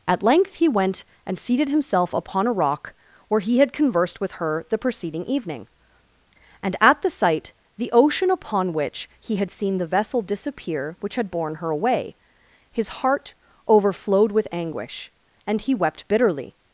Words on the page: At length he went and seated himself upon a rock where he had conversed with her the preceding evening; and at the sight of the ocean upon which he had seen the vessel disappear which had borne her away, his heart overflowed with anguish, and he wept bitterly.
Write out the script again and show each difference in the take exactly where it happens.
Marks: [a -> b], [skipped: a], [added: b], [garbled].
At length he went and seated himself upon a rock where he had conversed with her the preceding evening; and at the sight [skipped: of] the ocean upon which he had seen the vessel disappear which had borne her away, his heart overflowed with anguish, and he wept bitterly.